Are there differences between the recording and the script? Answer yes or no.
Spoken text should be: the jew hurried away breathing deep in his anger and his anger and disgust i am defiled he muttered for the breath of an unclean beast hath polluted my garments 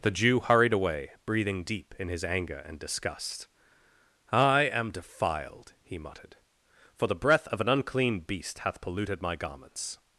yes